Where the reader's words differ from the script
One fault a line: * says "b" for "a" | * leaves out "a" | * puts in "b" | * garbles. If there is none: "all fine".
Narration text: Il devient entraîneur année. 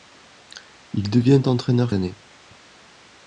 all fine